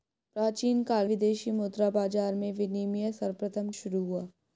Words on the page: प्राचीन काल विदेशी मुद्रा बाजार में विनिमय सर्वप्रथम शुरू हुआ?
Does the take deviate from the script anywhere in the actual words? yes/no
no